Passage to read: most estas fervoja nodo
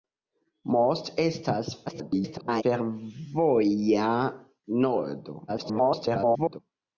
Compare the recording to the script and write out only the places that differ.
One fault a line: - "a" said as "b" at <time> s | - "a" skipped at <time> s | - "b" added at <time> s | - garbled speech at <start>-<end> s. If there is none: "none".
- garbled speech at 1.9-2.6 s
- garbled speech at 5.5-6.6 s